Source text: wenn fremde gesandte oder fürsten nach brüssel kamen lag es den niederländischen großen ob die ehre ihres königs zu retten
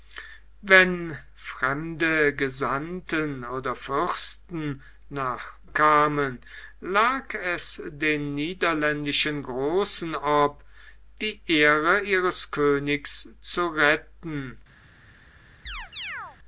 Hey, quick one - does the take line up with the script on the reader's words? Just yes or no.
no